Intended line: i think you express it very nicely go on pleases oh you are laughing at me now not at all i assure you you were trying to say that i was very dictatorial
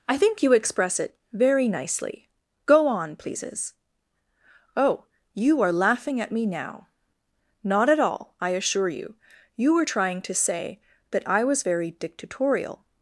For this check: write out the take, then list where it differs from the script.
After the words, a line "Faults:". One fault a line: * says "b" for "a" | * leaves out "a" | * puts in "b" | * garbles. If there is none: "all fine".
i think you express it very nicely go on pleases oh you are laughing at me now not at all i assure you you were trying to say that i was very dictatorial
Faults:
all fine